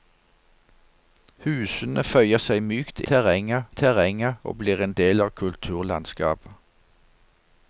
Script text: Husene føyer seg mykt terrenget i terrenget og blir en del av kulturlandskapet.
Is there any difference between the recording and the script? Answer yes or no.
no